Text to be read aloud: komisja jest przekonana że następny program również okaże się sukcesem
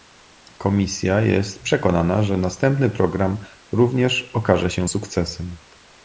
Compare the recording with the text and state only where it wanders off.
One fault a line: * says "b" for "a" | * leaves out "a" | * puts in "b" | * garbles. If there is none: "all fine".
all fine